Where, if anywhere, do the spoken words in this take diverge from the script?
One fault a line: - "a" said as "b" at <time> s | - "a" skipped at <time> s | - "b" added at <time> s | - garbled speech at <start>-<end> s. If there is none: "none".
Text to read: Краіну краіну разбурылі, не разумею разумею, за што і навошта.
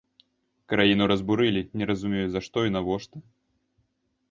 - "краіну" skipped at 1.0 s
- "разумею" skipped at 2.3 s